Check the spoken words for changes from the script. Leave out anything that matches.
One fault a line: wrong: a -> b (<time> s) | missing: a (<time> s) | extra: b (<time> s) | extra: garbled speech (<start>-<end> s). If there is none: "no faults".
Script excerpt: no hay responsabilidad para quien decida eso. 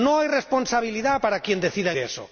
no faults